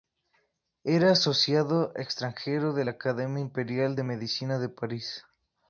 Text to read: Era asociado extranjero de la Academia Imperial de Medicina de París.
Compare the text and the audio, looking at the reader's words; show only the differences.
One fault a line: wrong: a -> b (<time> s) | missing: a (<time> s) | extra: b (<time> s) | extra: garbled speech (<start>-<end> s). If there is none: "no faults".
no faults